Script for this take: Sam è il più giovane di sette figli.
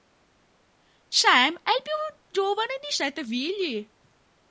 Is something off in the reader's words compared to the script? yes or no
no